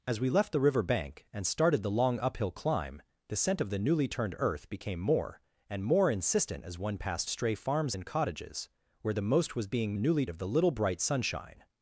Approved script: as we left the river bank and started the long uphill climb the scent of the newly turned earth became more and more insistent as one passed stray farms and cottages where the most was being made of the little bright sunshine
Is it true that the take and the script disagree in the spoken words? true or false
true